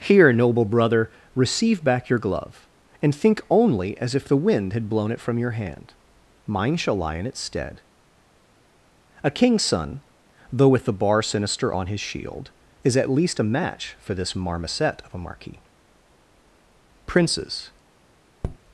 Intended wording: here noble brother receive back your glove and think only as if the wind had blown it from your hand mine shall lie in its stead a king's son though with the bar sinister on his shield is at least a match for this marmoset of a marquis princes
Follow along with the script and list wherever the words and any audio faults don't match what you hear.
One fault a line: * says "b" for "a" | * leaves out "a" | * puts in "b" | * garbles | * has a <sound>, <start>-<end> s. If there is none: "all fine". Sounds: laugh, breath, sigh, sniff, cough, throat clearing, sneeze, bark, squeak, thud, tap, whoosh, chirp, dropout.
* has a tap, 18.4-18.6 s